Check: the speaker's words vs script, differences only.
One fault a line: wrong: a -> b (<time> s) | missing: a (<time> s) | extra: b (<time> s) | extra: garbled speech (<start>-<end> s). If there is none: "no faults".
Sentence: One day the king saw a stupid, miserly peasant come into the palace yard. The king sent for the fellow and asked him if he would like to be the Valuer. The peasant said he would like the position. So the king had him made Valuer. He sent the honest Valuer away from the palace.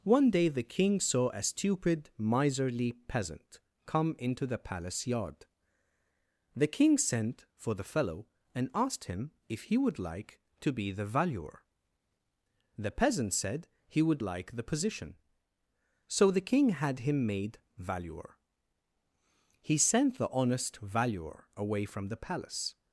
no faults